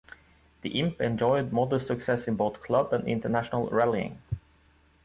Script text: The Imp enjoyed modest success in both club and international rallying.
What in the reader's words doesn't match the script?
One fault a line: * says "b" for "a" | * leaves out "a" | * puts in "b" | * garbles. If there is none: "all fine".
all fine